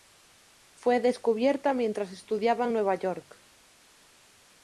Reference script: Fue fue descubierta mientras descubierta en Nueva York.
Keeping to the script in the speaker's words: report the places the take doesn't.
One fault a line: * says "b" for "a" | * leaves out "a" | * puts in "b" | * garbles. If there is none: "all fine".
* leaves out "fue"
* says "estudiaba" for "descubierta"